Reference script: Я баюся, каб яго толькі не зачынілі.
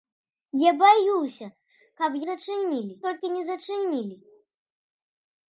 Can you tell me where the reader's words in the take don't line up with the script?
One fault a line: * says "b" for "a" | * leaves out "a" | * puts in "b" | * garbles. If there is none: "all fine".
* says "зачынілі" for "яго"